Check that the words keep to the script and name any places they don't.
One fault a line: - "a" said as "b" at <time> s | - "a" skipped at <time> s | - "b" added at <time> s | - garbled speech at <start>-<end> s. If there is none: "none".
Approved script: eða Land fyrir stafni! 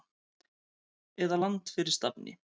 none